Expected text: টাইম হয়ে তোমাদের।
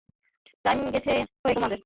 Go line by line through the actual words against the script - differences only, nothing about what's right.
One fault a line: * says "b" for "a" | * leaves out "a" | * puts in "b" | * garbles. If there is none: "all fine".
all fine